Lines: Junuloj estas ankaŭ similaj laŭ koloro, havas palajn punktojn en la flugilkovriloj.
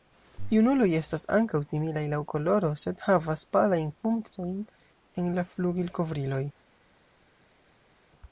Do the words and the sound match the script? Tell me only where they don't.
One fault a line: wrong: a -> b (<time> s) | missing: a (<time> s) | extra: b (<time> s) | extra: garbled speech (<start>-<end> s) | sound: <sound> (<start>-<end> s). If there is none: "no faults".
extra: sed (2.9 s)